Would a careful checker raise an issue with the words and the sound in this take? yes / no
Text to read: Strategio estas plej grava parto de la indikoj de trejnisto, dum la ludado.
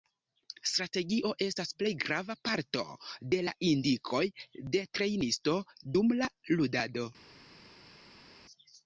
no